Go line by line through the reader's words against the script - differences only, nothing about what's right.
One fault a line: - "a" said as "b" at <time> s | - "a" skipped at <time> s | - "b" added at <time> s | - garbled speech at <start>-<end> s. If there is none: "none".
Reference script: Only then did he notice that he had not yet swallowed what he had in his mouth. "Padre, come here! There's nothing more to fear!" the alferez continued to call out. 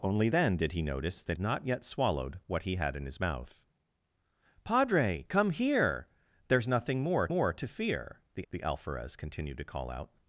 - "he had" skipped at 1.4 s
- "more" added at 7.3 s
- "the" added at 8.5 s